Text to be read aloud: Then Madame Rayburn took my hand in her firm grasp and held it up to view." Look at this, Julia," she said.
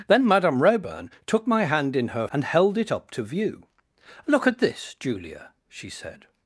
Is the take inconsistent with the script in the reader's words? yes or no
yes